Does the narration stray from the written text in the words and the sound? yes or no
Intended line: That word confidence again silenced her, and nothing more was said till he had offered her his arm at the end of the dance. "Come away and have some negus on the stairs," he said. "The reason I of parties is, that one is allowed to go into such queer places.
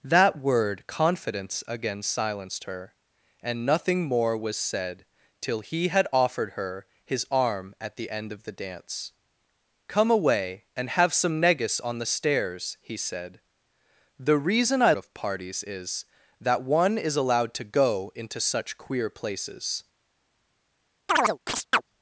yes